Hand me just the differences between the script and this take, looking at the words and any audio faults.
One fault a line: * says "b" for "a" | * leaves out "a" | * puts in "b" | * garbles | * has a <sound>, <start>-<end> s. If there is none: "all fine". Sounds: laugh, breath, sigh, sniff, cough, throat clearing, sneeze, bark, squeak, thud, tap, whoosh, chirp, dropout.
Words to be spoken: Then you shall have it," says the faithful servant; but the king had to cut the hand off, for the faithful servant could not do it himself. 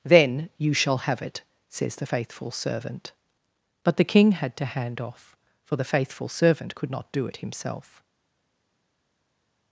* leaves out "cut the"